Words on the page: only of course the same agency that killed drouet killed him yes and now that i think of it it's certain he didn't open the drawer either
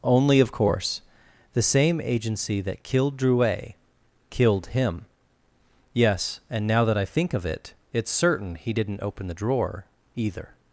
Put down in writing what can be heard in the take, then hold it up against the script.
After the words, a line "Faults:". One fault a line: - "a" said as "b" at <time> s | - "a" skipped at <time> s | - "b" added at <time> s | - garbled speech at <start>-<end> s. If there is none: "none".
only of course the same agency that killed drouet killed him yes and now that i think of it it's certain he didn't open the drawer either
Faults:
none